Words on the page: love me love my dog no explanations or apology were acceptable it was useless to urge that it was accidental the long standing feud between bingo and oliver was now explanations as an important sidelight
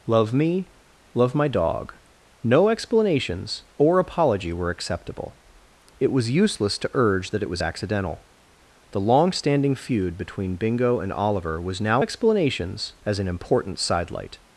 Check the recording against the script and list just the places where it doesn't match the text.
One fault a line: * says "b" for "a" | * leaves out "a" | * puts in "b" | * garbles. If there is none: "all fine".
all fine